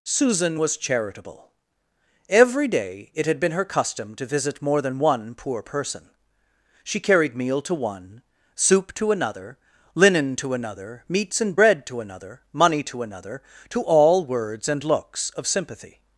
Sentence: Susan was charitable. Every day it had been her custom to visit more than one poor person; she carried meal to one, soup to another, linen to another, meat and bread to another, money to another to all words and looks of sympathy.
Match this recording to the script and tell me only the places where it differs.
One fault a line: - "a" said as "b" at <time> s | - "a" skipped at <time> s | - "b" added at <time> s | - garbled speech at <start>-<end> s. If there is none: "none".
- "meat" said as "meats" at 11.1 s